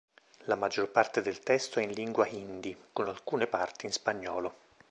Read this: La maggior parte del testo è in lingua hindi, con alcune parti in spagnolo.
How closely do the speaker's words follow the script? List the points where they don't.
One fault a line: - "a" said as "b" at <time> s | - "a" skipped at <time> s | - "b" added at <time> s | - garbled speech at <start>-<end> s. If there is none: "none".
none